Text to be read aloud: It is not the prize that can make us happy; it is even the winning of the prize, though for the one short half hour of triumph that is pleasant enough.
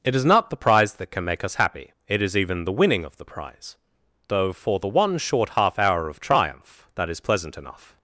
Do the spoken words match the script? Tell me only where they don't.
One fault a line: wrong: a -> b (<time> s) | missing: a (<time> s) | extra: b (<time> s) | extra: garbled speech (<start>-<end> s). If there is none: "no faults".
no faults